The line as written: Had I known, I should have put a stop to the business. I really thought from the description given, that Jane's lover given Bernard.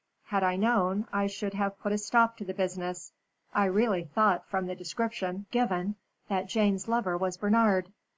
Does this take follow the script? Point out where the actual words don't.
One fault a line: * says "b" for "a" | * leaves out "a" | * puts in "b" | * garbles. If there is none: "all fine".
* says "was" for "given"